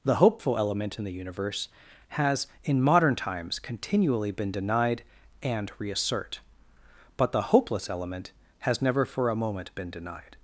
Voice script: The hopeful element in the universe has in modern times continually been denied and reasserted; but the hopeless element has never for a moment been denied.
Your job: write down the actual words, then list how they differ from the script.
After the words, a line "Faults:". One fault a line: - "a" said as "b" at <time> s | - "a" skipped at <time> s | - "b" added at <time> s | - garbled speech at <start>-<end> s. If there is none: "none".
The hopeful element in the universe has in modern times continually been denied and reassert; but the hopeless element has never for a moment been denied.
Faults:
- "reasserted" said as "reassert" at 5.8 s